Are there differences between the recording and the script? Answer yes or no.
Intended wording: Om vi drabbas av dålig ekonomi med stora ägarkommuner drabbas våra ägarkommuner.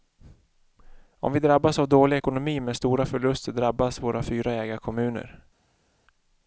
yes